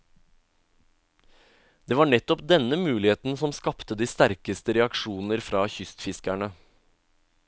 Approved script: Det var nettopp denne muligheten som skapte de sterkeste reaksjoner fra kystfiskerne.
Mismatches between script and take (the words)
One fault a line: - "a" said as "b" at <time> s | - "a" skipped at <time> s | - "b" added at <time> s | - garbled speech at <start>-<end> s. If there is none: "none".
none